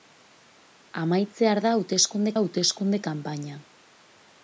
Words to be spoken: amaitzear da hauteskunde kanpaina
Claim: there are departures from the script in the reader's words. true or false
true